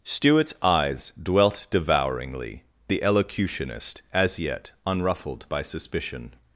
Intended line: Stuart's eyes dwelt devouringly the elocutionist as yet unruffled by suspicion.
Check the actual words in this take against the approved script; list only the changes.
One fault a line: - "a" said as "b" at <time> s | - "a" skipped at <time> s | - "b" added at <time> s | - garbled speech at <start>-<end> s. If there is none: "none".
none